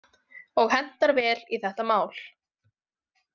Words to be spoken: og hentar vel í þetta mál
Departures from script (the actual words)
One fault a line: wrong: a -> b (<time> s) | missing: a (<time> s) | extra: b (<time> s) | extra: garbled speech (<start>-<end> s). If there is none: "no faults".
no faults